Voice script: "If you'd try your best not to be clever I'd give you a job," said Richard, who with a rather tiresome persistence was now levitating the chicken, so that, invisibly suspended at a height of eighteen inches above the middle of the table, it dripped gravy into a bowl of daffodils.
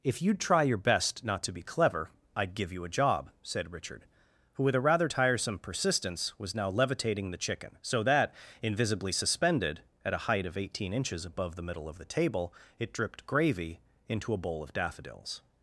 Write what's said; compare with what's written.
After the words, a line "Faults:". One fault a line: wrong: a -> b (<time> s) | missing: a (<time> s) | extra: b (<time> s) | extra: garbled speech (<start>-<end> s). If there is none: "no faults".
"If you'd try your best not to be clever I'd give you a job," said Richard, who with a rather tiresome persistence was now levitating the chicken, so that, invisibly suspended at a height of eighteen inches above the middle of the table, it dripped gravy into a bowl of daffodils.
Faults:
no faults